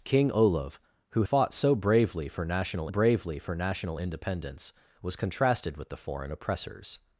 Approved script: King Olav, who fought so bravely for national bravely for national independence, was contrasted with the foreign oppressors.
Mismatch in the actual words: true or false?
false